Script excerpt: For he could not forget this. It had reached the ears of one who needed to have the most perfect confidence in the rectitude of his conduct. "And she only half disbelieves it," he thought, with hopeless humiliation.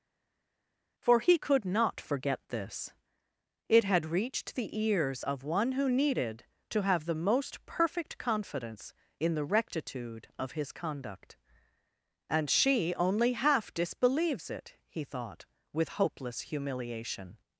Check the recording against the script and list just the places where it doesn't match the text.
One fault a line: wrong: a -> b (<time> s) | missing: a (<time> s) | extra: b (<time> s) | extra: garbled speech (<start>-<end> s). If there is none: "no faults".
no faults